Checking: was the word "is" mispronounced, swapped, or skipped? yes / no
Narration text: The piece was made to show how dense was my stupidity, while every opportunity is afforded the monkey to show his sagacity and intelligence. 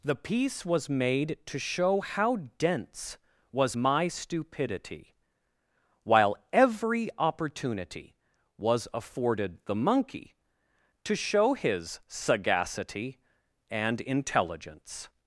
yes